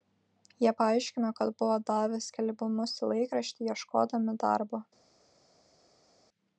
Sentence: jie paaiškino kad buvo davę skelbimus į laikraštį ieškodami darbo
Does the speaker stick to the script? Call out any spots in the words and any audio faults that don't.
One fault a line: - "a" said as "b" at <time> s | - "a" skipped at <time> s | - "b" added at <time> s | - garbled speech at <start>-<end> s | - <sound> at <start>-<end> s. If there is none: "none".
none